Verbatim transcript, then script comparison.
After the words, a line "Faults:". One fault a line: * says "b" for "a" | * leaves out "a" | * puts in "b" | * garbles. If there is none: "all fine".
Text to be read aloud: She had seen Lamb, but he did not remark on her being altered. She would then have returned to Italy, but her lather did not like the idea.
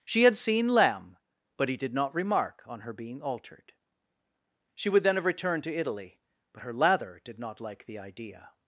She had seen Lamb, but he did not remark on her being altered. She would then have returned to Italy, but her lather did not like the idea.
Faults:
all fine